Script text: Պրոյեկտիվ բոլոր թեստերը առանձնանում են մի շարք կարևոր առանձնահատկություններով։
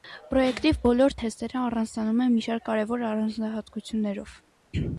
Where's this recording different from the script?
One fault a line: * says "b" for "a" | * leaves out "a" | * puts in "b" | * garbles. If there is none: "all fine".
all fine